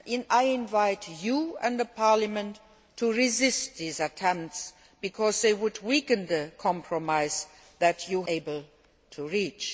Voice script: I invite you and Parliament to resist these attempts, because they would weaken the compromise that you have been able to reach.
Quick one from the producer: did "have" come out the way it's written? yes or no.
no